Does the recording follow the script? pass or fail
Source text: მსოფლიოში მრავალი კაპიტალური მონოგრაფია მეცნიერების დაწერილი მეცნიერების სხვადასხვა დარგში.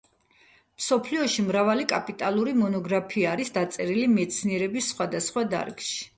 fail